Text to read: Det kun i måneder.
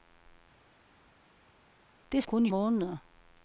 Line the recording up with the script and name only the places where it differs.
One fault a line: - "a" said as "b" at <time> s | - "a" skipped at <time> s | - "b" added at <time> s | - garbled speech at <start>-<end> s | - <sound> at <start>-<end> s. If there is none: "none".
none